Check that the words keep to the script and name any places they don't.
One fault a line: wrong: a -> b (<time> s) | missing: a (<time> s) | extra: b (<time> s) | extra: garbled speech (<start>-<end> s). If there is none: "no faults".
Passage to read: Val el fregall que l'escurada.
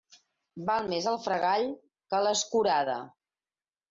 extra: més (0.9 s)